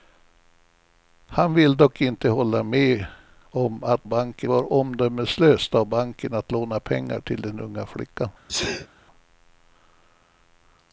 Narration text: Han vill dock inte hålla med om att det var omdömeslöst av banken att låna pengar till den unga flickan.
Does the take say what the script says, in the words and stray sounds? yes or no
no